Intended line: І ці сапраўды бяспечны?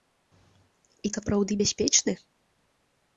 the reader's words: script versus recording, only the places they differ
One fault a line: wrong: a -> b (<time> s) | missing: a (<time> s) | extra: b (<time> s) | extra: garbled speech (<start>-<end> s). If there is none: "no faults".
missing: ці (1.1 s)